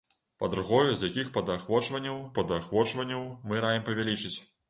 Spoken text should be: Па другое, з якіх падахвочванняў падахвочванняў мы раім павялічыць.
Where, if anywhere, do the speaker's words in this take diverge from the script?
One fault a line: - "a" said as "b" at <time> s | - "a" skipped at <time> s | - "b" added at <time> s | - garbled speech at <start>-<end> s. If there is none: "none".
none